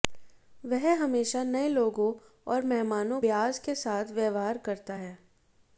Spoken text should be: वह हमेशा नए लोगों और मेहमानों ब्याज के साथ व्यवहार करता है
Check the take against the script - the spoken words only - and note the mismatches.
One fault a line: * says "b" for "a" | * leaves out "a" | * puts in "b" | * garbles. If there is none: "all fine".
all fine